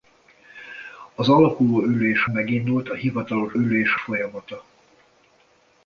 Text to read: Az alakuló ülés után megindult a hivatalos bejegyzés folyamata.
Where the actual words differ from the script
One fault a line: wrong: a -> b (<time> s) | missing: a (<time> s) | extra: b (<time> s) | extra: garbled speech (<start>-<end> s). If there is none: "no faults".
missing: után (2.3 s)
wrong: bejegyzés -> ülés (3.5 s)